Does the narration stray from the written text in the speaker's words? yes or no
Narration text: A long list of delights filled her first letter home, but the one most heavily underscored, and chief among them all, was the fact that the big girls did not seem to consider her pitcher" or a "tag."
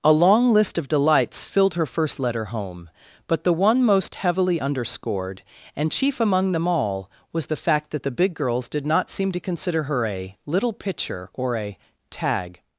yes